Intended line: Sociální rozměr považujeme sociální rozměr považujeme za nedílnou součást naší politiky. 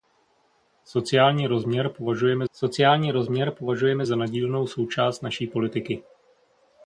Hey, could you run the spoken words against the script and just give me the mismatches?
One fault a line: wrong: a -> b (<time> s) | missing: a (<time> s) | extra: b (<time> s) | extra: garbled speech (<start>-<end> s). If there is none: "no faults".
no faults